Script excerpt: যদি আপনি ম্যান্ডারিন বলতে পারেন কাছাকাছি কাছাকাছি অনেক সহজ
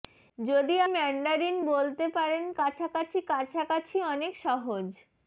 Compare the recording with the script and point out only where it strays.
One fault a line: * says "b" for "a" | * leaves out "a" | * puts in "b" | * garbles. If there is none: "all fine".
* leaves out "আপনি"